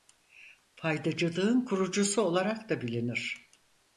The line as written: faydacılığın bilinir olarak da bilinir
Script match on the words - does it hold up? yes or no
no